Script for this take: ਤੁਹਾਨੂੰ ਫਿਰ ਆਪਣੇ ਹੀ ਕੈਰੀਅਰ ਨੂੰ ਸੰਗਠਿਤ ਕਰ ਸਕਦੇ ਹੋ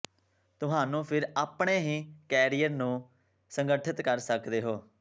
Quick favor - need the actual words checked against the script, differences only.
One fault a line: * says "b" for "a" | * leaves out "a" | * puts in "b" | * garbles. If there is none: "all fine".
all fine